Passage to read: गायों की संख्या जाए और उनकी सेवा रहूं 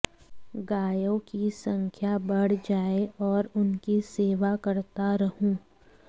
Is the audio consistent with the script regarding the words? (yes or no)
no